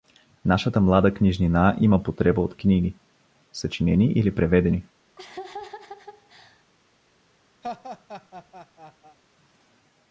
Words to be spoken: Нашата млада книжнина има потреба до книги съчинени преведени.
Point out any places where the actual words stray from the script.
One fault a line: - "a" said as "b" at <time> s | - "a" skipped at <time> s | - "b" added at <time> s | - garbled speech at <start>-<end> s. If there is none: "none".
- "до" said as "от" at 2.4 s
- "или" added at 4.0 s